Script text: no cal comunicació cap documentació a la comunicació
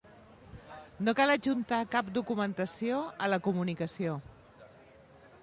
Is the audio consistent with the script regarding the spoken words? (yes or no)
no